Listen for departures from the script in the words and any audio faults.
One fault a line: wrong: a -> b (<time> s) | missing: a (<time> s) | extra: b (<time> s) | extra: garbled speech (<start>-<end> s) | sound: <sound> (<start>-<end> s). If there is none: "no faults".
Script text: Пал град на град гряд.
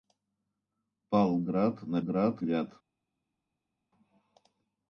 no faults